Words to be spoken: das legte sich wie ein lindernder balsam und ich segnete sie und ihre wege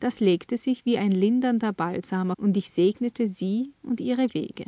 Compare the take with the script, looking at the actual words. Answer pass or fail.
pass